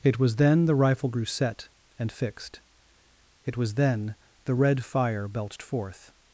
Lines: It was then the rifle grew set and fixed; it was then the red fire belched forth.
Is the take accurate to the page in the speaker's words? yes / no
yes